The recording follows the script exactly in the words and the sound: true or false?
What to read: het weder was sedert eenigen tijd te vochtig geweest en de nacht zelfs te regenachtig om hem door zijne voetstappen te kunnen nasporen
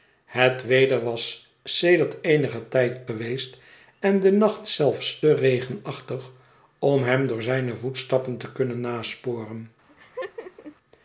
false